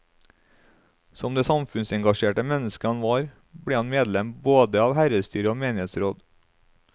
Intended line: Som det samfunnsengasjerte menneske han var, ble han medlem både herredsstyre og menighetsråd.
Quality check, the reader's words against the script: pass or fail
fail